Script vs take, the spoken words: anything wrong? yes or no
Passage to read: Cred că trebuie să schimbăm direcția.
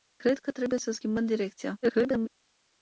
yes